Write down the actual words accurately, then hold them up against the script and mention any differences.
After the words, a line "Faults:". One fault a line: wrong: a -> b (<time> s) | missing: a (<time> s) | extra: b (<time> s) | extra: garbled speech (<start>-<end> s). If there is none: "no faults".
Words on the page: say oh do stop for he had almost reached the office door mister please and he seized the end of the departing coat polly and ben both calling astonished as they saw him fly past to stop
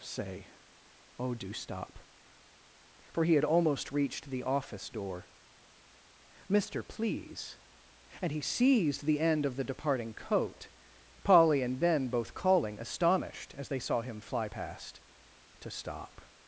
say oh do stop for he had almost reached the office door mister please and he seized the end of the departing coat polly and ben both calling astonished as they saw him fly past to stop
Faults:
no faults